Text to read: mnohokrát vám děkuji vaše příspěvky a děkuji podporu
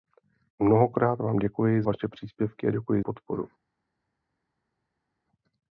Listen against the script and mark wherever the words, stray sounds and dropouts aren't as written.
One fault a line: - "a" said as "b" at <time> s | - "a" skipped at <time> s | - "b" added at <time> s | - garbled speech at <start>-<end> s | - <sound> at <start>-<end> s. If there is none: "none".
none